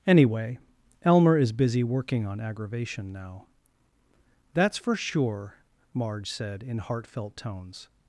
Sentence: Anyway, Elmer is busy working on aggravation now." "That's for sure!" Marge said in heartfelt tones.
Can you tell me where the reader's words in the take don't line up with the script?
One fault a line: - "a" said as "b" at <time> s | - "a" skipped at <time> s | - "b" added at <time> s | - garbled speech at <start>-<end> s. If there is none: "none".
none